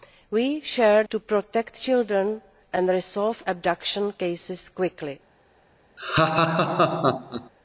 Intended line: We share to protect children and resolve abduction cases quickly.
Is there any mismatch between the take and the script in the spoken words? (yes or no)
no